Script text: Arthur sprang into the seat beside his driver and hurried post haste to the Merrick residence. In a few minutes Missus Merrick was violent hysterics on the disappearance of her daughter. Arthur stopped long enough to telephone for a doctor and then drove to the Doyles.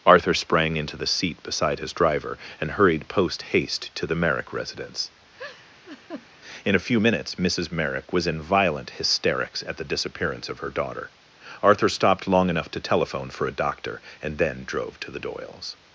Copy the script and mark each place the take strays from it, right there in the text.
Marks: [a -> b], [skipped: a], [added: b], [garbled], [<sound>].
Arthur sprang into the seat beside his driver and hurried post haste to the Merrick residence. [laugh] In a few minutes Missus Merrick was [added: in] violent hysterics [on -> at] the disappearance of her daughter. Arthur stopped long enough to telephone for a doctor and then drove to the Doyles.